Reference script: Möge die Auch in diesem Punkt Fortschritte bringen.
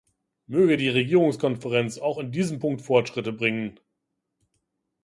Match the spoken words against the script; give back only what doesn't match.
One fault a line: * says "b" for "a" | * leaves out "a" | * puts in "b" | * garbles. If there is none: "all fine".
* puts in "Regierungskonferenz"